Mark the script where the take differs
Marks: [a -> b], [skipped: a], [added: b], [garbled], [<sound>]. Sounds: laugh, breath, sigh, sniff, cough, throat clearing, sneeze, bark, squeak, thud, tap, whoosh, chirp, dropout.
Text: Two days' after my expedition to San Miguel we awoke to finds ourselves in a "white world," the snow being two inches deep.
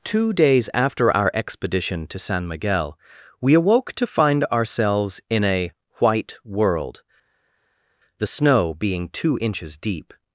Two days' after [my -> our] expedition to San Miguel we awoke to [finds -> find] ourselves in a "white world," the snow being two inches deep.